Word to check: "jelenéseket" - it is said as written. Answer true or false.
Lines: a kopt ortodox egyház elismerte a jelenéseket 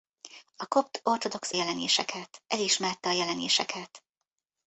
true